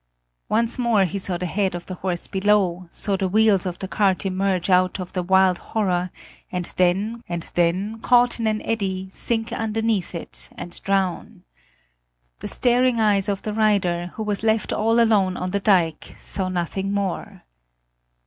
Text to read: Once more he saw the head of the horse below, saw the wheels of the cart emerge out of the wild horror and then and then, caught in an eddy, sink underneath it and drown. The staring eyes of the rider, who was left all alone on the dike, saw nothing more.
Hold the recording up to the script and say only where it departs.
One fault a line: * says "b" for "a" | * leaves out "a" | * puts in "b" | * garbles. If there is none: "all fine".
all fine